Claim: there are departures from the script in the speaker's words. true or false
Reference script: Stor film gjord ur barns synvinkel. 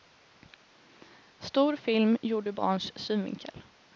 false